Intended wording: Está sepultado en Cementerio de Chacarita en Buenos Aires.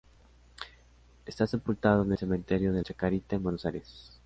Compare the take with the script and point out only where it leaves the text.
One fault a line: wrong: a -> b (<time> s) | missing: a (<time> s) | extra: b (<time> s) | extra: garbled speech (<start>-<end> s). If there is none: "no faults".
no faults